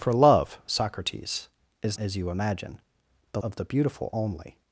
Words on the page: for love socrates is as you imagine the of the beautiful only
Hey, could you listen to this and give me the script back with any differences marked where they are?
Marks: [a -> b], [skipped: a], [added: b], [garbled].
for love socrates is as you imagine the of the beautiful only